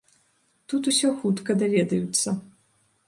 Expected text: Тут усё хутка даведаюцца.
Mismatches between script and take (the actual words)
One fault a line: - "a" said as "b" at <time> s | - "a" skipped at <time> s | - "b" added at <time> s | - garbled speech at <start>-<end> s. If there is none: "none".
none